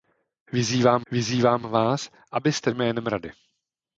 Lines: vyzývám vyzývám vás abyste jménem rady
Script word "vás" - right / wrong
right